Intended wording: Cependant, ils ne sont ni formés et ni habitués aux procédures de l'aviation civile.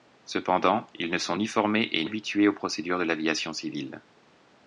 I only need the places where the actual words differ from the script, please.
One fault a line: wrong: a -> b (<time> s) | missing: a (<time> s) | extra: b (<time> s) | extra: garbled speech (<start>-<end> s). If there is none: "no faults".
missing: ni (2.1 s)